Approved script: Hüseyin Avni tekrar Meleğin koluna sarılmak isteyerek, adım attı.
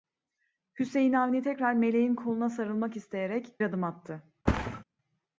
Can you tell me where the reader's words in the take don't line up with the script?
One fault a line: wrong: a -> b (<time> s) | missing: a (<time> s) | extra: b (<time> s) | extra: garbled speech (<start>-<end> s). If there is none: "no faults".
no faults